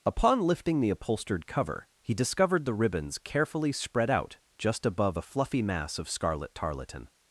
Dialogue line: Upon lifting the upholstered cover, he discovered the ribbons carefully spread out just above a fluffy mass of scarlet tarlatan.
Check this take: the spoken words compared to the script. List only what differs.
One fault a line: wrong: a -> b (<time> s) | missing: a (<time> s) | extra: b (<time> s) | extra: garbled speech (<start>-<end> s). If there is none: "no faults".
no faults